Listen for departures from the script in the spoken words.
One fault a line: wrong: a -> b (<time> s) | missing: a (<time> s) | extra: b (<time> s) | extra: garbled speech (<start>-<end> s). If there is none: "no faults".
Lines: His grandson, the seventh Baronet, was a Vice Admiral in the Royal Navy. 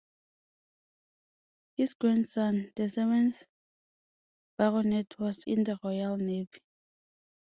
missing: a Vice Admiral (5.5 s)